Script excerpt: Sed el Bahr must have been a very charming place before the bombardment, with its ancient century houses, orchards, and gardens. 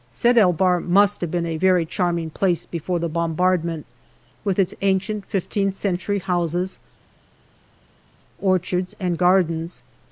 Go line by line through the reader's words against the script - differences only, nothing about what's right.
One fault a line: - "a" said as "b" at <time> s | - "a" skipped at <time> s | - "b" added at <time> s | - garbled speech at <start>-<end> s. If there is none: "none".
- "fifteenth" added at 5.3 s